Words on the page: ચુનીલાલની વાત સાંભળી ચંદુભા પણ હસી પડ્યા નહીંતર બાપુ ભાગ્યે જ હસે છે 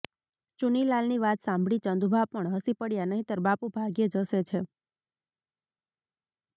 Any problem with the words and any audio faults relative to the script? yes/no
no